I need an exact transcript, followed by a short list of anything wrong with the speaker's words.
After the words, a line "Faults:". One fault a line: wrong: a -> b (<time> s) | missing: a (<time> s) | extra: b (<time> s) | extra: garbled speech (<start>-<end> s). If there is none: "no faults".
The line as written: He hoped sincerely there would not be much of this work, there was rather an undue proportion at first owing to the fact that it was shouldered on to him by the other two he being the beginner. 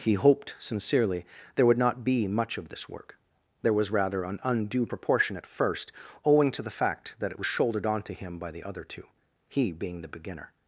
He hoped sincerely there would not be much of this work, there was rather an undue proportion at first owing to the fact that it was shouldered on to him by the other two he being the beginner.
Faults:
no faults